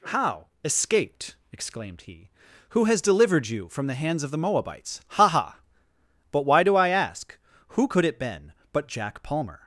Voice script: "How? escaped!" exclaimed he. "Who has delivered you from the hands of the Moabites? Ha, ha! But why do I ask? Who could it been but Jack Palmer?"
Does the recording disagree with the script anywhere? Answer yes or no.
no